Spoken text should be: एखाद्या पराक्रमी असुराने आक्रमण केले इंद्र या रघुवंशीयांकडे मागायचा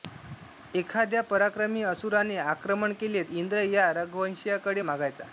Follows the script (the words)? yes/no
yes